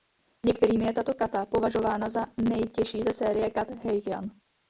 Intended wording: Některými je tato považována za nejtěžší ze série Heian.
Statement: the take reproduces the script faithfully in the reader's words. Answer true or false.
false